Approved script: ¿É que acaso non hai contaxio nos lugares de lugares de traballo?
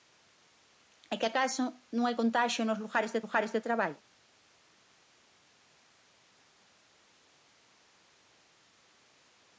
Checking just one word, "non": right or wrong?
right